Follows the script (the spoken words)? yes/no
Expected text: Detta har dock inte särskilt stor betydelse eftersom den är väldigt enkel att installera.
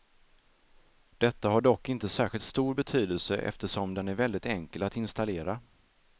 yes